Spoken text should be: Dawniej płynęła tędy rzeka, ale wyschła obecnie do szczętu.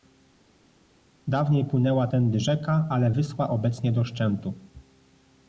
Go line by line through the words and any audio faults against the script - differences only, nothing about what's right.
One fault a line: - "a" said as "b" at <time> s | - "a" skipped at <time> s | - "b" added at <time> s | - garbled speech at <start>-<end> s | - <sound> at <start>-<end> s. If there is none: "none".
none